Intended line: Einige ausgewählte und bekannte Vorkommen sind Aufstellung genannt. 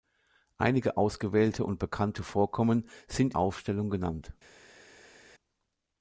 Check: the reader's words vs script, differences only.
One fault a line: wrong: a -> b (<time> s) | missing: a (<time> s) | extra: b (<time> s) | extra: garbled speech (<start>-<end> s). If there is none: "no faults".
no faults